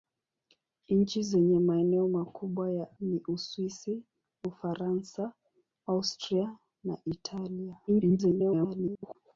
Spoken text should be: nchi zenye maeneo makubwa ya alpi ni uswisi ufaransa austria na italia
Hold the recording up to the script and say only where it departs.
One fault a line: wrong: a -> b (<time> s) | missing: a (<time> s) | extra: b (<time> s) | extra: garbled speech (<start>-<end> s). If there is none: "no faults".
missing: alpi (3.0 s)
extra: garbled speech (7.9-9.2 s)